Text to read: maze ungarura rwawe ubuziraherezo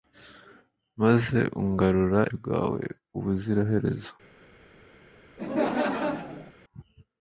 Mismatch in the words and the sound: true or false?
true